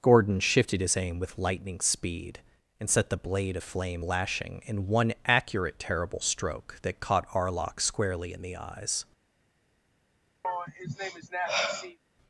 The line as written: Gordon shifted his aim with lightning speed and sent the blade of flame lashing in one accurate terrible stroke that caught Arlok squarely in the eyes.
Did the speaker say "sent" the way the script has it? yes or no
no